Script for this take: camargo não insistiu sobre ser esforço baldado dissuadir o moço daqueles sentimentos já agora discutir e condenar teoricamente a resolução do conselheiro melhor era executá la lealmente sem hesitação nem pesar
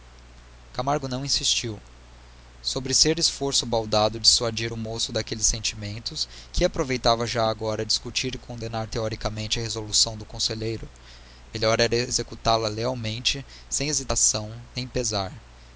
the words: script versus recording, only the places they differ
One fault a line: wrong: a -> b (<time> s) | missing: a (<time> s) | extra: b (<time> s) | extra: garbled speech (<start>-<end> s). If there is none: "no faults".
extra: que aproveitava (6.5 s)